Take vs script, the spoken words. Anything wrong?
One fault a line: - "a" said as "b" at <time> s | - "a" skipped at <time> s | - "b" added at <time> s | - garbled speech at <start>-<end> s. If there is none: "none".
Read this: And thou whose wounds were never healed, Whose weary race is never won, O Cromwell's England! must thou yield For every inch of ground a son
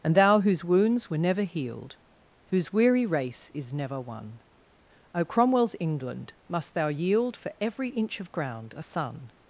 none